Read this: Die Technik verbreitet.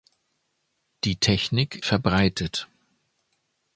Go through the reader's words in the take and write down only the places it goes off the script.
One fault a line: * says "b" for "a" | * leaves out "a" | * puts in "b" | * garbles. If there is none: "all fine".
all fine